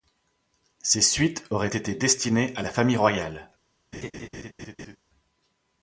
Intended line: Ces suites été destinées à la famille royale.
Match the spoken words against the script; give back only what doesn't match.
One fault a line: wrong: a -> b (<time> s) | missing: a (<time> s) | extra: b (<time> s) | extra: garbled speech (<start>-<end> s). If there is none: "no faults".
extra: auraient (1.5 s)